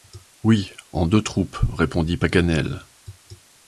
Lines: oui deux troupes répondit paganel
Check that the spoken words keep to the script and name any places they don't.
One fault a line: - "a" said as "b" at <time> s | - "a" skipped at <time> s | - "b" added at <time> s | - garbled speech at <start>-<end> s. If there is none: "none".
- "en" added at 0.9 s